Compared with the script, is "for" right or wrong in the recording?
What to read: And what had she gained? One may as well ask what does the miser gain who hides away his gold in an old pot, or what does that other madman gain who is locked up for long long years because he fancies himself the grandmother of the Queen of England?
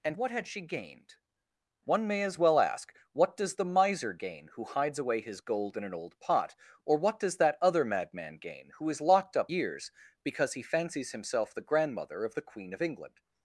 wrong